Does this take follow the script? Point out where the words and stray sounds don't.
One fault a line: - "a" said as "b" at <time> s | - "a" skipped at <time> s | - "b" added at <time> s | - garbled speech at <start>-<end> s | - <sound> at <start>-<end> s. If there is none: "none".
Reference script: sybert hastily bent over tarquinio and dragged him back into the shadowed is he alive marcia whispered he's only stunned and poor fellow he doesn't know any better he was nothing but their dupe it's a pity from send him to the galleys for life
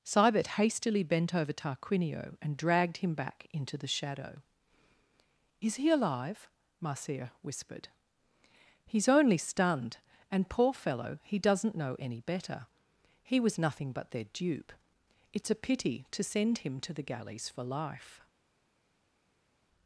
- "shadowed" said as "shadow" at 3.9 s
- "from" said as "to" at 16.1 s